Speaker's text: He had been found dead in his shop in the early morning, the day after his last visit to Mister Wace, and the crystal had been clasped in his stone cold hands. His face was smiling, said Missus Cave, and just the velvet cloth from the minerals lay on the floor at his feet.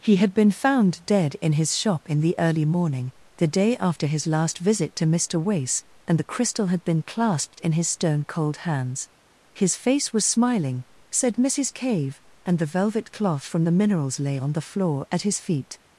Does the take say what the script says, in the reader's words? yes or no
no